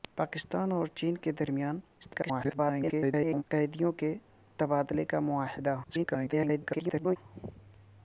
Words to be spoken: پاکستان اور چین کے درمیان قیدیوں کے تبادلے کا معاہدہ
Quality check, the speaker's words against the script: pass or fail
fail